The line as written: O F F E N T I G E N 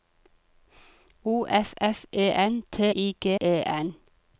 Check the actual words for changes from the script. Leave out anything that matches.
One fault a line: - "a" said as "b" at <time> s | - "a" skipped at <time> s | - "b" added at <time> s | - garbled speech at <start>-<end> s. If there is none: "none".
none